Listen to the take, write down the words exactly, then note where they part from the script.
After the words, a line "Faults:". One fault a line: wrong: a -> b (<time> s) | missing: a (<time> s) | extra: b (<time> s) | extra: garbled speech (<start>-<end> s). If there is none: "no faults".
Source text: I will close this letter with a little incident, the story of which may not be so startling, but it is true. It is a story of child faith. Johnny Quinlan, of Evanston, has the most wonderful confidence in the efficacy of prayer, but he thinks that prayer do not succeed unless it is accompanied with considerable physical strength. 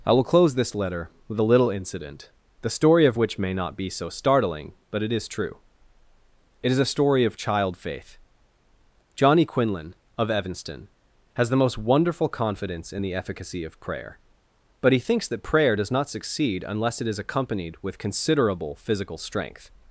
I will close this letter with a little incident, the story of which may not be so startling, but it is true. It is a story of child faith. Johnny Quinlan, of Evanston, has the most wonderful confidence in the efficacy of prayer, but he thinks that prayer does not succeed unless it is accompanied with considerable physical strength.
Faults:
wrong: do -> does (15.7 s)